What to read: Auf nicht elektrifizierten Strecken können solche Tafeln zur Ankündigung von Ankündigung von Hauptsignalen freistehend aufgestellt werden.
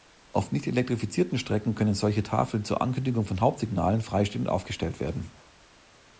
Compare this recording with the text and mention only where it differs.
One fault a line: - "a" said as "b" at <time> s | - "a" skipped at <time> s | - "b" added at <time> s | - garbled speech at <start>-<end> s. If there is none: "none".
- "Ankündigung von" skipped at 3.4 s